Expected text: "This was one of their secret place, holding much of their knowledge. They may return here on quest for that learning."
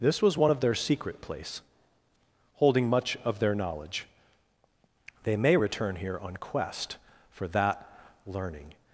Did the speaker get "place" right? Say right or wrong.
right